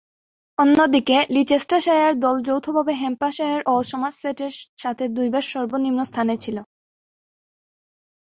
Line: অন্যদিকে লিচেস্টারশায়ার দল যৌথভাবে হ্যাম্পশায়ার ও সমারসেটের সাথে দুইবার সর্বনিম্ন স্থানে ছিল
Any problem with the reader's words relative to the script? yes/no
no